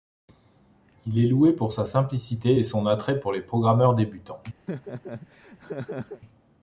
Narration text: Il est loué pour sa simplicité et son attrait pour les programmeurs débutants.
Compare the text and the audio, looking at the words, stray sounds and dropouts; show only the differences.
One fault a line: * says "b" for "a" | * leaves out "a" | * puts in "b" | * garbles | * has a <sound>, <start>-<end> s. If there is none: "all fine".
* has a laugh, 4.7-6.2 s